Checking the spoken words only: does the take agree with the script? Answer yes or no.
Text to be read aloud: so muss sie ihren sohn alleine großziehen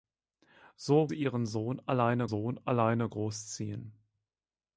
no